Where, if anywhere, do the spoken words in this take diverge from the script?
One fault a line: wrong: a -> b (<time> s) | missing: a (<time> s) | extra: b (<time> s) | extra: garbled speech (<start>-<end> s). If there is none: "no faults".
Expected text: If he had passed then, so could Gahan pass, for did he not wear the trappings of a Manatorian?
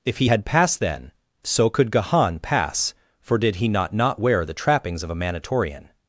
extra: not (3.9 s)